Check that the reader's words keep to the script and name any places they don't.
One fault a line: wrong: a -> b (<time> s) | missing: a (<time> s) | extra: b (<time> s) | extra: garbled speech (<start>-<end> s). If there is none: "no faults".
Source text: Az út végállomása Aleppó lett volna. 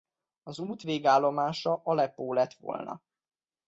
no faults